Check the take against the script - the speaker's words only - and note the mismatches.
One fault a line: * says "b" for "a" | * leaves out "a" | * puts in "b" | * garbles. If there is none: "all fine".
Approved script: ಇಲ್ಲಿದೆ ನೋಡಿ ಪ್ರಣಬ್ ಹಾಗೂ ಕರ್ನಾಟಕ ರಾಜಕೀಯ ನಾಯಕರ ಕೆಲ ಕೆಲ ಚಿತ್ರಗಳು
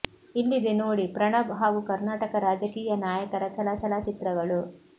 all fine